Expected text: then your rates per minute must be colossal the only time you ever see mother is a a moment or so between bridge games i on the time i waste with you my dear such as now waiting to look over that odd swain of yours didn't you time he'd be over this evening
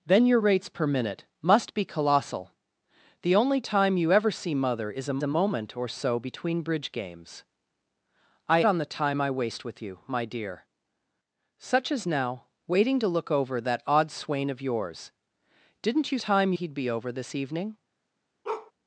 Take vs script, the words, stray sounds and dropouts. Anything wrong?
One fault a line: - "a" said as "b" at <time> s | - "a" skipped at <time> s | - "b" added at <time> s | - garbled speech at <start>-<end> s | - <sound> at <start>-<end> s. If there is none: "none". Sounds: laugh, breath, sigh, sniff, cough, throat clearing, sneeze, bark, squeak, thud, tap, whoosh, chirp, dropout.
- bark at 18.4-18.7 s